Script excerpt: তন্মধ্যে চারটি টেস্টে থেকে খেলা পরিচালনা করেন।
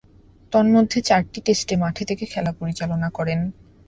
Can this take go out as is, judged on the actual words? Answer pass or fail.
fail